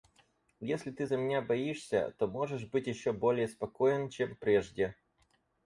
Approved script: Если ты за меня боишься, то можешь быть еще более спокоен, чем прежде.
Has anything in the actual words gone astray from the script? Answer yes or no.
no